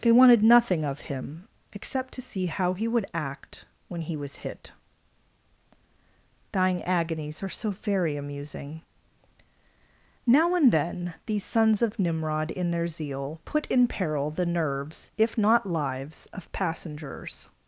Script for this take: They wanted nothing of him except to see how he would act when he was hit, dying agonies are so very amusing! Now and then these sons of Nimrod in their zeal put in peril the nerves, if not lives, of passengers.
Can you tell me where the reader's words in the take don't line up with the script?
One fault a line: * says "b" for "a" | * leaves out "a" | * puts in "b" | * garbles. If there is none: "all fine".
all fine